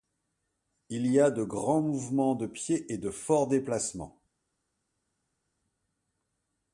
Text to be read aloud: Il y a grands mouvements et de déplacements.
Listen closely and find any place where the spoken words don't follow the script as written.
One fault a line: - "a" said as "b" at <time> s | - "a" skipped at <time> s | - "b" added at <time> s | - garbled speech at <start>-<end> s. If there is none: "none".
- "de" added at 1.3 s
- "de pieds" added at 2.3 s
- "forts" added at 3.1 s